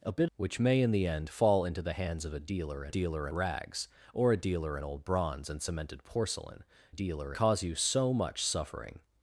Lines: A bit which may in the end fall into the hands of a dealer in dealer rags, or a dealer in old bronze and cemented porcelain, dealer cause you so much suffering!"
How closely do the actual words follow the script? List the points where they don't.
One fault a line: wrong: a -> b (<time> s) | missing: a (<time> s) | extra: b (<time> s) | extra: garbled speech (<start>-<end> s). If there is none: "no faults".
no faults